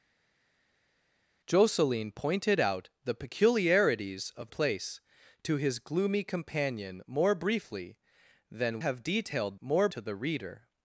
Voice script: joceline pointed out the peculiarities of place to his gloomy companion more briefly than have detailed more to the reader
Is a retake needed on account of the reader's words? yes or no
no